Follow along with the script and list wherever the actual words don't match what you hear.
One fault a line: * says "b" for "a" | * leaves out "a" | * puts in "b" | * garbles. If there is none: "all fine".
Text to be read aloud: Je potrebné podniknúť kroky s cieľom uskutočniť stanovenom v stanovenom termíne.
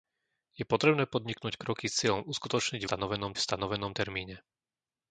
all fine